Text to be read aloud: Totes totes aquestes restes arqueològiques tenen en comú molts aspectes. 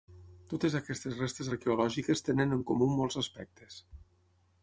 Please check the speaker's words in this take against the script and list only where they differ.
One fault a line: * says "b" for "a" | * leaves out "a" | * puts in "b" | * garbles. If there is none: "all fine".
* leaves out "totes"